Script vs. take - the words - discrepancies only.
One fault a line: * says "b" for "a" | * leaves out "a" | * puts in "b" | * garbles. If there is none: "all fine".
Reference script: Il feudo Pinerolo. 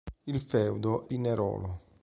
all fine